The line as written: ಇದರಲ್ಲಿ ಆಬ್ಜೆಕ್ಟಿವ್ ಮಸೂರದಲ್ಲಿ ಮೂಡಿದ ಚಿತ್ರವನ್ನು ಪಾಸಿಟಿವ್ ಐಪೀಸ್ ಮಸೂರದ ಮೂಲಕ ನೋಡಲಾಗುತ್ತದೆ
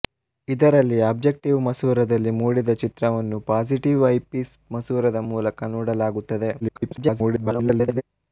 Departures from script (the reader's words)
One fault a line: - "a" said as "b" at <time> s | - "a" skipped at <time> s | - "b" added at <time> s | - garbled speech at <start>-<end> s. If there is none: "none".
- garbled speech at 6.6-8.0 s